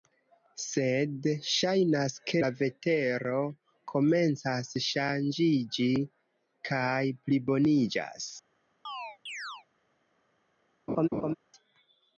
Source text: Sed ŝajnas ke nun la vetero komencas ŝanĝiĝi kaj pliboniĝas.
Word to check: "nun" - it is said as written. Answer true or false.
false